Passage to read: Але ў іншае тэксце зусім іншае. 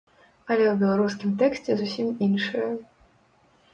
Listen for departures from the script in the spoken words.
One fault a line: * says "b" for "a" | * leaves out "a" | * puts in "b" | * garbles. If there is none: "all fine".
* says "беларускім" for "іншае"